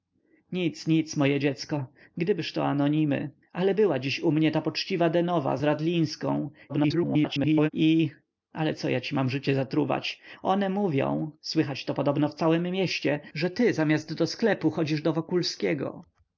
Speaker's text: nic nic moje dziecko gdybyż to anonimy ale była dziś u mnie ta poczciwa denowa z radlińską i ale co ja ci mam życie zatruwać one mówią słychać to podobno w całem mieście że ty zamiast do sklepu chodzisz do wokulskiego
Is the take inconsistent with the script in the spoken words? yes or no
yes